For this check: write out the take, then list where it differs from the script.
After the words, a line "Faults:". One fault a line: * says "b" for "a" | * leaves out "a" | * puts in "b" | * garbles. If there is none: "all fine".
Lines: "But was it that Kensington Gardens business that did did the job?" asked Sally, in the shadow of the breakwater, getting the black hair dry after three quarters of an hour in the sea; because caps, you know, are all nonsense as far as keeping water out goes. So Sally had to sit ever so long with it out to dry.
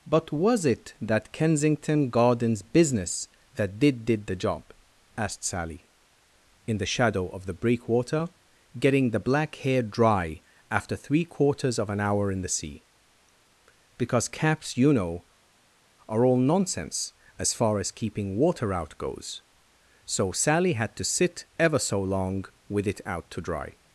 "But was it that Kensington Gardens business that did did the job?" asked Sally, in the shadow of the breakwater, getting the black hair dry after three quarters of an hour in the sea; because caps, you know, are all nonsense as far as keeping water out goes. So Sally had to sit ever so long with it out to dry.
Faults:
all fine